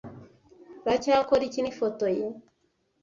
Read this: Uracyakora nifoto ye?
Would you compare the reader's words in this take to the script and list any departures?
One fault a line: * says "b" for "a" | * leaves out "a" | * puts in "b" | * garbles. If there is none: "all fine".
* puts in "iki"